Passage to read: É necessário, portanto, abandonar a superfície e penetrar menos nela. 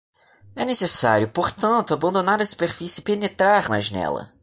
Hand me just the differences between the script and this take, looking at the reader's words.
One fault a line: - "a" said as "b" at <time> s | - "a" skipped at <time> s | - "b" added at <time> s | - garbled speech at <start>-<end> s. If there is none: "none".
- "menos" said as "mais" at 3.7 s